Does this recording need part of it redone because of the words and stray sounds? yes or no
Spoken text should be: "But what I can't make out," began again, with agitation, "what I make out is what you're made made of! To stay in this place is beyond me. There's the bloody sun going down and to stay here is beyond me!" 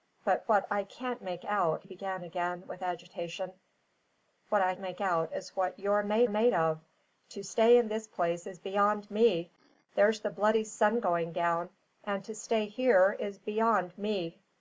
no